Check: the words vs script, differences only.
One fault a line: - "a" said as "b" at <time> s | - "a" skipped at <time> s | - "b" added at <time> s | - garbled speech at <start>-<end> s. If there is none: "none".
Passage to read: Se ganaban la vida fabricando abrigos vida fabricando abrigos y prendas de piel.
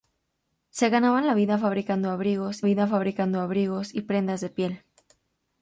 none